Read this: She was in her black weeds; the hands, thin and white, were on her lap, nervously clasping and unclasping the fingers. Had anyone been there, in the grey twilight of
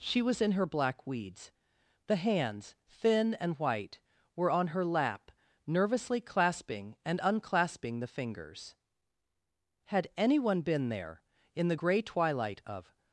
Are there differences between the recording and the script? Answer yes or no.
no